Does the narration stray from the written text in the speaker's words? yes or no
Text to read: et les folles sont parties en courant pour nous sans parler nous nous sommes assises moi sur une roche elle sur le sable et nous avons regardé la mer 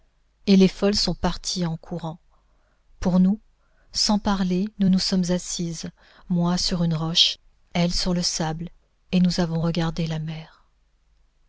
no